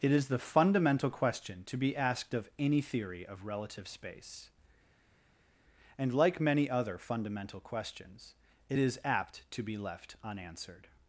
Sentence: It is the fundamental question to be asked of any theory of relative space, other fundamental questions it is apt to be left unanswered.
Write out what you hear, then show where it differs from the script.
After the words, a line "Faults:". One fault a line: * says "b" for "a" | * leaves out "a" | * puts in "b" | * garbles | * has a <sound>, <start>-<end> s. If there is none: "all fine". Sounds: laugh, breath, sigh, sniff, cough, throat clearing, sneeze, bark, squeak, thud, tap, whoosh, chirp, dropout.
It is the fundamental question to be asked of any theory of relative space, and like many other fundamental questions it is apt to be left unanswered.
Faults:
* puts in "and like many"